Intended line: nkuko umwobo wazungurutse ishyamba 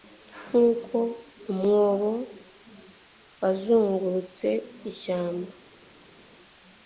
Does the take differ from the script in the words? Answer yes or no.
no